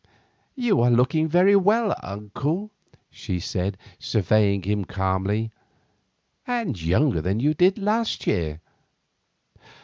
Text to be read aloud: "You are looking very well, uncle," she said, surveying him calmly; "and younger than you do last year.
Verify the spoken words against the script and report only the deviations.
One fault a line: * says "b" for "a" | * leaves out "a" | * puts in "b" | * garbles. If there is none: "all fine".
* says "did" for "do"